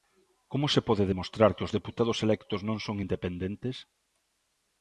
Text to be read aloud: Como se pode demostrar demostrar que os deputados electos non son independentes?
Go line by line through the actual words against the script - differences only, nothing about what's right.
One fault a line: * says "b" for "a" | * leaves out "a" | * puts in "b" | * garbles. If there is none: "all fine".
* leaves out "demostrar"